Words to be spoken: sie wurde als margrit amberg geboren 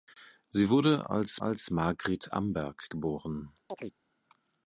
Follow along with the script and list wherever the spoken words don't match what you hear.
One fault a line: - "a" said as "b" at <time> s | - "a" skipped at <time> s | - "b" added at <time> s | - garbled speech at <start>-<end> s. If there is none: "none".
- "als" added at 1.4 s